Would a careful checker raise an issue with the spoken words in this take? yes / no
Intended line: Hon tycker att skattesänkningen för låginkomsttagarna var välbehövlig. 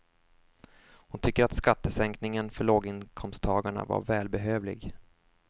no